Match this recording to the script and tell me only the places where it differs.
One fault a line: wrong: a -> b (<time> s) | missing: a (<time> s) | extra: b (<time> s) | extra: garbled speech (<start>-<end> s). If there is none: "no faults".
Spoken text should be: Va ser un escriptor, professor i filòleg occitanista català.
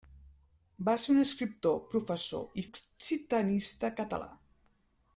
missing: filòleg (2.7 s)